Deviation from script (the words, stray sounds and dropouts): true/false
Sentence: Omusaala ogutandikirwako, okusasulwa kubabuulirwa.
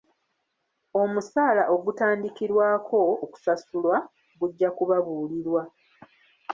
true